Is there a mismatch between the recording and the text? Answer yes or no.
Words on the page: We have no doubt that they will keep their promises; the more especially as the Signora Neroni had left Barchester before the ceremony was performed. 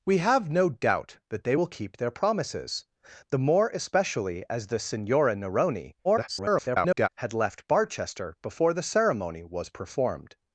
yes